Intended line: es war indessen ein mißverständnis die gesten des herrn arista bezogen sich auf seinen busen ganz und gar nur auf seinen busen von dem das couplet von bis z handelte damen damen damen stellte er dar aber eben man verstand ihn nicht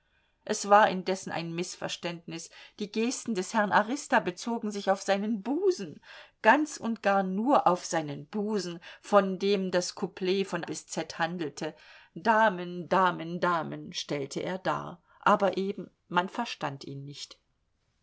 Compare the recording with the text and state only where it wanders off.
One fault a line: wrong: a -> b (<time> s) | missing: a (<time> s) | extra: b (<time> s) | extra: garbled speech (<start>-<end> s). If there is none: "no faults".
no faults